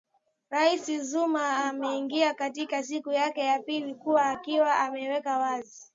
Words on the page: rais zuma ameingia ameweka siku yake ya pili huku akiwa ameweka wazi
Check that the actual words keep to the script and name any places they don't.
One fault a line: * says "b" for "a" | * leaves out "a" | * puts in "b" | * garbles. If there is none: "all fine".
* says "katika" for "ameweka"